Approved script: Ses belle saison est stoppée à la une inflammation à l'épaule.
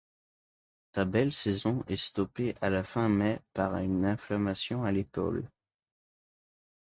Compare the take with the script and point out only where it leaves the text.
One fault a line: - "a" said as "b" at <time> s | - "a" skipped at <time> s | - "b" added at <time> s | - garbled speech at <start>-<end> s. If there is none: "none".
- "Ses" said as "Sa" at 0.9 s
- "fin mai par" added at 2.8 s